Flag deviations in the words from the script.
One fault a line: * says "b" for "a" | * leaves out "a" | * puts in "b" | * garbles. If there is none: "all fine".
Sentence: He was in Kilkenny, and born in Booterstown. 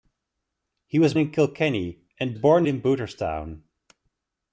all fine